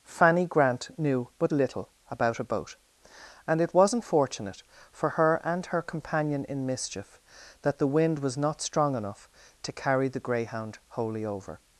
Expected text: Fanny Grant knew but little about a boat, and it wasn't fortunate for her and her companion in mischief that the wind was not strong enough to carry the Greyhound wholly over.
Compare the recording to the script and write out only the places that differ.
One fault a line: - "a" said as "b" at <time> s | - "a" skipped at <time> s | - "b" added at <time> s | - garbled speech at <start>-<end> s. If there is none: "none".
none